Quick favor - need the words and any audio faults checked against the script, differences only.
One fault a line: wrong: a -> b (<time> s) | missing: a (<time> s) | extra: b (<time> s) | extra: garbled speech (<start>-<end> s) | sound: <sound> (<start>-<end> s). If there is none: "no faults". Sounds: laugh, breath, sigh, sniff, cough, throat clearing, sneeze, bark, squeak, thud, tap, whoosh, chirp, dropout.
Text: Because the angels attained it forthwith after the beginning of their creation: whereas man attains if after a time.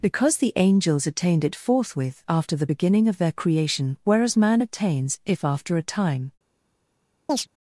sound: chirp (7.3-7.5 s)